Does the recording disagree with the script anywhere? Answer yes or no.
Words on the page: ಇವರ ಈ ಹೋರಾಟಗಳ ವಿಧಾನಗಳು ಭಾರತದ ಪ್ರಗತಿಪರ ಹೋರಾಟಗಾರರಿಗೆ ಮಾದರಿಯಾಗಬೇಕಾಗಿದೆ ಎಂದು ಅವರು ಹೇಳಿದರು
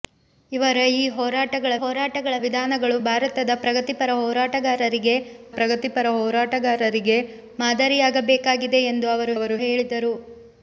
yes